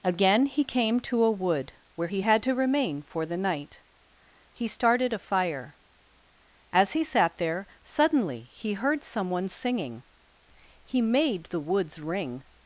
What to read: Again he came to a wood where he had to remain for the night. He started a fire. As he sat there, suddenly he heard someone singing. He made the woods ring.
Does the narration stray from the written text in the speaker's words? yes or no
no